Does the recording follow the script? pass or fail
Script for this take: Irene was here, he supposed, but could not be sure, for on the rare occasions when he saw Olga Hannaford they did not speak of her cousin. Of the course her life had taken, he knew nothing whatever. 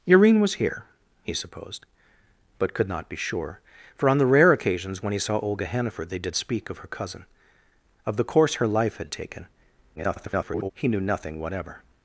fail